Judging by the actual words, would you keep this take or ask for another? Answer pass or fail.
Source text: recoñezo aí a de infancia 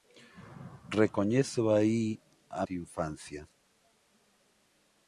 pass